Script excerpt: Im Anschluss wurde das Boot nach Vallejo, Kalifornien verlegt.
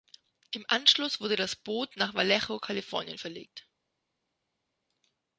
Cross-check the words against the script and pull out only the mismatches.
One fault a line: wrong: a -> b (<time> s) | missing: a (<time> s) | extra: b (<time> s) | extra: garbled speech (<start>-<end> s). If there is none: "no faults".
no faults